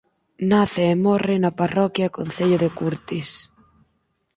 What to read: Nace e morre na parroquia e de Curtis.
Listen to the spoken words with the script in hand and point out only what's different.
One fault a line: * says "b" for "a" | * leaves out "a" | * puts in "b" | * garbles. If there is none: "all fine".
* puts in "concello"